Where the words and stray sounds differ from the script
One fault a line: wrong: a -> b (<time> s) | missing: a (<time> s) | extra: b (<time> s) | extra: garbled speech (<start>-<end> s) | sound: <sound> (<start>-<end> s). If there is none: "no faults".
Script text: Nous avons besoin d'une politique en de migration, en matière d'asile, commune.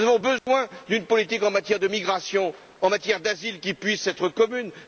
sound: dropout (0.4-0.5 s)
extra: matière (1.5 s)
extra: qui puisse être (3.6 s)